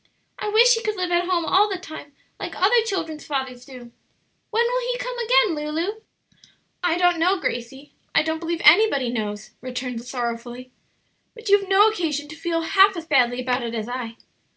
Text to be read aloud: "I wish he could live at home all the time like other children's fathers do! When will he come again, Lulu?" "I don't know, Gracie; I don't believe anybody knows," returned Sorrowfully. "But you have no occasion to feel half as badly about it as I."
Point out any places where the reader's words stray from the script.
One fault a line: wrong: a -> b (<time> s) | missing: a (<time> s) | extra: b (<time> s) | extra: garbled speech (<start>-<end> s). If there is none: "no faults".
no faults